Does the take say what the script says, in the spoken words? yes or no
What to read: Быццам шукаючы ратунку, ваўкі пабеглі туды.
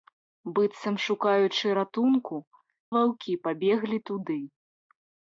yes